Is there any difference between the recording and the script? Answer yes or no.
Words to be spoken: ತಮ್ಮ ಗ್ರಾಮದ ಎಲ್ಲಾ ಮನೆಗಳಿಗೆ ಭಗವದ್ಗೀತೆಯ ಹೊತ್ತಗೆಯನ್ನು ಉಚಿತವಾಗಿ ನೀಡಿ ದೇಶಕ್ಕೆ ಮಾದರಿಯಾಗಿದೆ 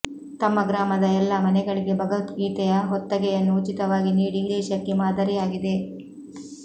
no